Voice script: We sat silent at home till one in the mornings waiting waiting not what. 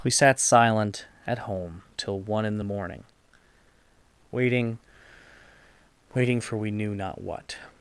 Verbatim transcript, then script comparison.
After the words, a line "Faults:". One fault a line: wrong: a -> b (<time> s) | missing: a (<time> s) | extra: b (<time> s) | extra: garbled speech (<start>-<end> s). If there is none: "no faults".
We sat silent at home till one in the morning waiting waiting for we knew not what.
Faults:
wrong: mornings -> morning (2.6 s)
extra: for we knew (6.4 s)